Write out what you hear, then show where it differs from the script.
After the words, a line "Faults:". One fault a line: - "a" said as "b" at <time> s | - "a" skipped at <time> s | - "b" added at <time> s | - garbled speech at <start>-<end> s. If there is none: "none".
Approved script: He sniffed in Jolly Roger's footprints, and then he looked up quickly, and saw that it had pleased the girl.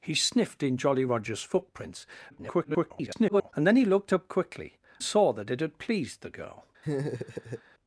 He sniffed in Jolly Roger's footprints, [garbled] and then he looked up quickly, saw that it had pleased the girl.
Faults:
- garbled speech at 2.3-3.5 s
- "and" skipped at 4.8 s